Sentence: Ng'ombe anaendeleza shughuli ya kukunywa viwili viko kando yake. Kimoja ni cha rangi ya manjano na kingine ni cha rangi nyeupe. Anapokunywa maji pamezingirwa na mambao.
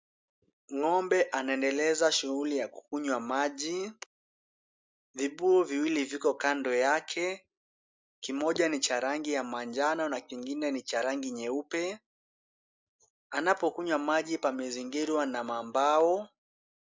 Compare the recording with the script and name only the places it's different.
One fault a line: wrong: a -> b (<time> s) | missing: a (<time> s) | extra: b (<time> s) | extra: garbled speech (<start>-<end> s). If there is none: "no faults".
extra: maji Vibuyu (3.2 s)